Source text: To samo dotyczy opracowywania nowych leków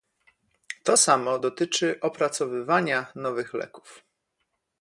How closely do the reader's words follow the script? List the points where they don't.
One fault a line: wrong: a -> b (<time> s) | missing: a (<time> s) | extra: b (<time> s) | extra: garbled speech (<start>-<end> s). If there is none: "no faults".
no faults